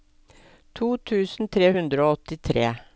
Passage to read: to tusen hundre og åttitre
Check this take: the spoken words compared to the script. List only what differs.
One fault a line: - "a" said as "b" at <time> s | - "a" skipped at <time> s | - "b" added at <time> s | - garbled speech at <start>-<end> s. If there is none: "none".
- "tre" added at 1.6 s